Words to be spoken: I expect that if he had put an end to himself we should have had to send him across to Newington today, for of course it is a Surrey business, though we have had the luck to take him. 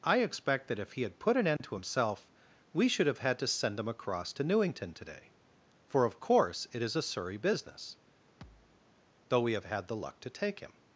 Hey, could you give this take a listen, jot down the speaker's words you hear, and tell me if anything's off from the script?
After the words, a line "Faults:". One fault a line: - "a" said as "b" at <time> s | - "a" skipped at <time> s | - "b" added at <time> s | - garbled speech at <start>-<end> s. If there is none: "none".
I expect that if he had put an end to himself we should have had to send him across to Newington today, for of course it is a Surrey business, though we have had the luck to take him.
Faults:
none